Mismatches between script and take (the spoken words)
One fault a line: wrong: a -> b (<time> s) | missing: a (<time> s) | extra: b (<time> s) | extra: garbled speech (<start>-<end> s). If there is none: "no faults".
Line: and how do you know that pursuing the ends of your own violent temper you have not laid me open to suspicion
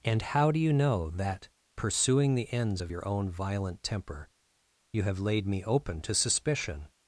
missing: not (5.2 s)